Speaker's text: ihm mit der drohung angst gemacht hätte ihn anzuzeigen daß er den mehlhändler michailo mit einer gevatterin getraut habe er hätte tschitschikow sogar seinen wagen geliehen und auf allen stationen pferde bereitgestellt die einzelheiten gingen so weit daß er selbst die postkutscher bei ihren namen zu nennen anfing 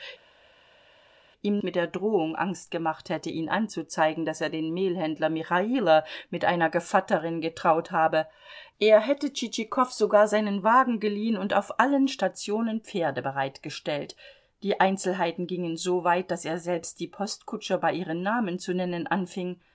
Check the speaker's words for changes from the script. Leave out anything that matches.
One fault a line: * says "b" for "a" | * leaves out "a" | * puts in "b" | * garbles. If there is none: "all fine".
all fine